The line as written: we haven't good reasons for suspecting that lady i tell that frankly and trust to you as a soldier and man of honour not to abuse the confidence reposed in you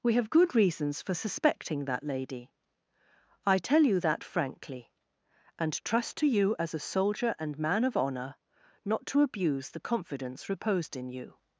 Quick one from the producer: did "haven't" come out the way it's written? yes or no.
no